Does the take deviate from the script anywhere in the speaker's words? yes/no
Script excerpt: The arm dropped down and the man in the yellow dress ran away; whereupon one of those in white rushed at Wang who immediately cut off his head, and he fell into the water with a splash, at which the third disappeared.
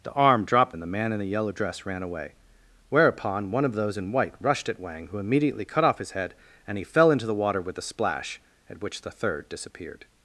yes